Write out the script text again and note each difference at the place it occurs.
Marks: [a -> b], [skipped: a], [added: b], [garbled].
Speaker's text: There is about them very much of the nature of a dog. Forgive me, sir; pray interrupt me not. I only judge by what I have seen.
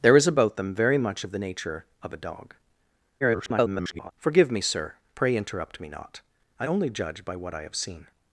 There is about them very much of the nature of a dog. [garbled] Forgive me, sir; pray interrupt me not. I only judge by what I have seen.